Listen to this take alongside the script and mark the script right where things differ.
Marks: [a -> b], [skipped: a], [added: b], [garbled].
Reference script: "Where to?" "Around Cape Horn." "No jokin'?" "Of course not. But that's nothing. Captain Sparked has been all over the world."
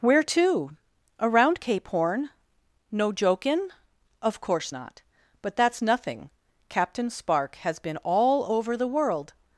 "Where to?" "Around Cape Horn." "No jokin'?" "Of course not. But that's nothing. Captain [Sparked -> Spark] has been all over the world."